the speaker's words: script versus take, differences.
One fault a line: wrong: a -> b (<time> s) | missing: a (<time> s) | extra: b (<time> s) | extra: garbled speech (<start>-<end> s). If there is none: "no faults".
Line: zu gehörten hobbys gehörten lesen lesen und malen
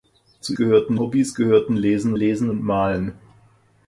no faults